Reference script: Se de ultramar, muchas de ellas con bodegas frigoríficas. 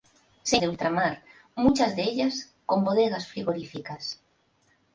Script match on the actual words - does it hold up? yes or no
yes